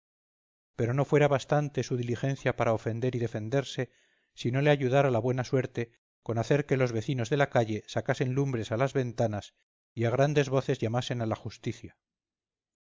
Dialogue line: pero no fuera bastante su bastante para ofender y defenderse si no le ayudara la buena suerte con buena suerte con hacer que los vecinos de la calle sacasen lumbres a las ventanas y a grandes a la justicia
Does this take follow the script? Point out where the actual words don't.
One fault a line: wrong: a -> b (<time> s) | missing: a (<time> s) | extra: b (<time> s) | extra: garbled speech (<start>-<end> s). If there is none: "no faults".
wrong: bastante -> diligencia (1.9 s)
missing: buena suerte con (6.4 s)
extra: voces llamasen (10.5 s)